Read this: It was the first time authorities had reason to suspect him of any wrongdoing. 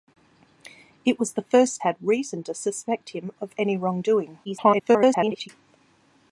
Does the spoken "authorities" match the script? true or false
false